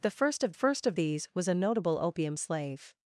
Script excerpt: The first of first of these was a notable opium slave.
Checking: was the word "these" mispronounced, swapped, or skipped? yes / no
no